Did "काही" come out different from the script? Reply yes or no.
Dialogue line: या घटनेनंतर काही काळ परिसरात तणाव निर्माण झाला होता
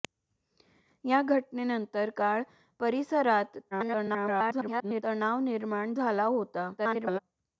yes